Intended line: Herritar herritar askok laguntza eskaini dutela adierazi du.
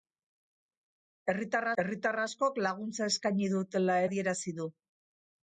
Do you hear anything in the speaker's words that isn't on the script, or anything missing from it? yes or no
no